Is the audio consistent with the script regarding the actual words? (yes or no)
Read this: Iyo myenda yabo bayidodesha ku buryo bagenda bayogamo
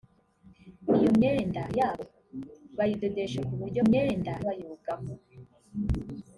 no